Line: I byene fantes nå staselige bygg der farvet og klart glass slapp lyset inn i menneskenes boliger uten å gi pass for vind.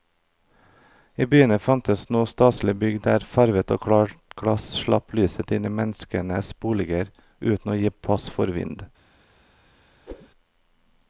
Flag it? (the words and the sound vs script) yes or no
yes